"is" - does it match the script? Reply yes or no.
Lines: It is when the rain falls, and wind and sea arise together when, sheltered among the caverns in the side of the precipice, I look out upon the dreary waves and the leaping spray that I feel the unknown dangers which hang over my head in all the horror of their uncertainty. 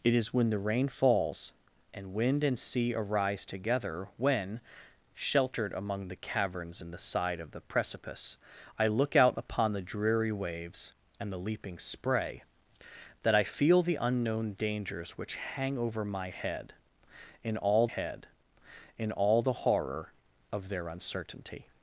yes